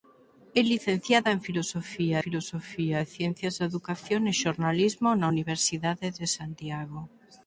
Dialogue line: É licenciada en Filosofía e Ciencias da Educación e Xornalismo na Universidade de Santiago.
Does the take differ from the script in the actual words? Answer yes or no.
yes